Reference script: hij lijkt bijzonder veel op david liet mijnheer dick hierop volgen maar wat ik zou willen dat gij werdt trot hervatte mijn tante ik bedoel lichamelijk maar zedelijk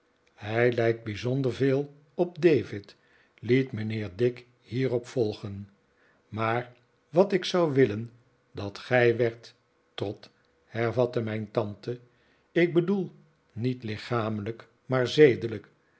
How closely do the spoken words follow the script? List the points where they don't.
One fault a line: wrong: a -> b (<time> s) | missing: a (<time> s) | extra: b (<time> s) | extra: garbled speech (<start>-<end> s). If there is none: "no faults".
extra: niet (13.5 s)